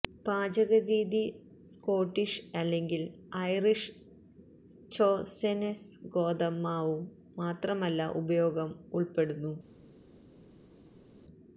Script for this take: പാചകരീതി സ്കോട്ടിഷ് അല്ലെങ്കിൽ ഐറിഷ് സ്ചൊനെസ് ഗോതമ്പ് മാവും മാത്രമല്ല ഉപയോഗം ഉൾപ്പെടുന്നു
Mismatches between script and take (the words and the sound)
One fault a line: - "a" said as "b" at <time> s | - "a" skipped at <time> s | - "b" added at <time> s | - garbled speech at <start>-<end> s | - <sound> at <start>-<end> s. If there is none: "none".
none